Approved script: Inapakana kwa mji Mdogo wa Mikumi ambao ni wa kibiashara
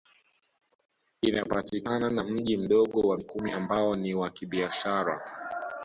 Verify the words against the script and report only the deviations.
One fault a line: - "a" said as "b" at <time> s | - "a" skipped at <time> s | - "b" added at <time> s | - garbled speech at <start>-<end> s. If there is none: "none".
- "kwa" said as "na" at 2.1 s